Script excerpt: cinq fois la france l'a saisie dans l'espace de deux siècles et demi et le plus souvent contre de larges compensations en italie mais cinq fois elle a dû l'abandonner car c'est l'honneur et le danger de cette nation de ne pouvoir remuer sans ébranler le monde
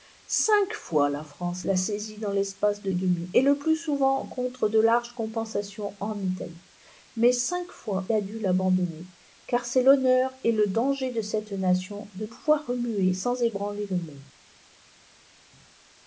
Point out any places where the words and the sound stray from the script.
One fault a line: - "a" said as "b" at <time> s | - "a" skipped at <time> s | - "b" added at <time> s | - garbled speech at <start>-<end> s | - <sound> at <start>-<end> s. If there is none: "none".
- "deux siècles" skipped at 2.9 s
- "elle" skipped at 8.1 s
- "ne" skipped at 12.3 s